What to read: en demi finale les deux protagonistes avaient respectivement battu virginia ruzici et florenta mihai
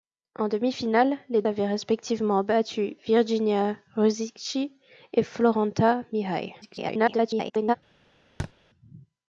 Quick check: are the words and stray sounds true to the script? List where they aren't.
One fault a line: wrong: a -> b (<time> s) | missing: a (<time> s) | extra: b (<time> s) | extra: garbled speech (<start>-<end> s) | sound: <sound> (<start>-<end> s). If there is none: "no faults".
missing: deux protagonistes (1.4 s)
extra: garbled speech (6.6-7.8 s)
sound: thud (8.4-8.5 s)